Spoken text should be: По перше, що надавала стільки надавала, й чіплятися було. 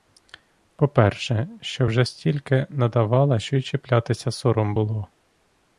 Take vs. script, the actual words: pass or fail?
fail